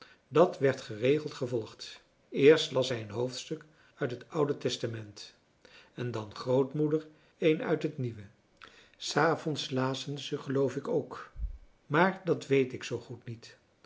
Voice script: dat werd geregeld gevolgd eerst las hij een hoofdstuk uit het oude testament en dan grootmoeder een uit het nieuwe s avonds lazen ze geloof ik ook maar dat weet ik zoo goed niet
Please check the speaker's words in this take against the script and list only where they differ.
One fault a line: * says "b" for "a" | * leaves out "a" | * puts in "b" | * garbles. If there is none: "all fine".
all fine